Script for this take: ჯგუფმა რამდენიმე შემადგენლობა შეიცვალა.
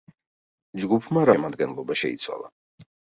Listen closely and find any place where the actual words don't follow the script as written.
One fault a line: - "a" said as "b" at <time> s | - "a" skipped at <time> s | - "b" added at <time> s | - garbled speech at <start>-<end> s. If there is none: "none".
- "რამდენიმე" skipped at 1.3 s